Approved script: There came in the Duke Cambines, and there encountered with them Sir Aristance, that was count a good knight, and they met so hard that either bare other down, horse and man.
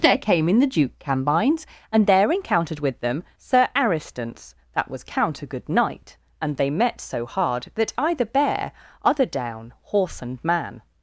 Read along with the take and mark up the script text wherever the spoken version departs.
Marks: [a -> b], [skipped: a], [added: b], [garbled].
There came in the Duke Cambines, and there encountered with them Sir Aristance, that was count a good knight, and they met so hard that either bare other down, horse and man.